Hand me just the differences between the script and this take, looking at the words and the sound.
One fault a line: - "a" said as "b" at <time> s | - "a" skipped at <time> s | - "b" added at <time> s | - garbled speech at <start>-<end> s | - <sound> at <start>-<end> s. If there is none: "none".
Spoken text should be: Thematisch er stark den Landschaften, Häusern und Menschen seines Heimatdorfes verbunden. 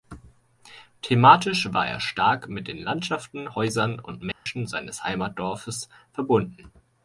- "war" added at 1.7 s
- "mit" added at 2.5 s
- dropout at 4.3-4.5 s